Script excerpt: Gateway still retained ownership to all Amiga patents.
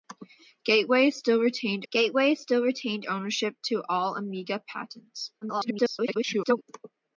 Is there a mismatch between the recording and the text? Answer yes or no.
yes